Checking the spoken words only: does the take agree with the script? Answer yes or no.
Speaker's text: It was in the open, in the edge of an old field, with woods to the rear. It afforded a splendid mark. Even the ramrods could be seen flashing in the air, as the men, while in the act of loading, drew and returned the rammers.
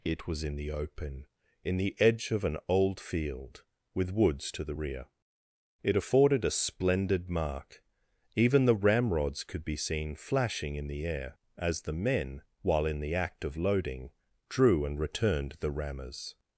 yes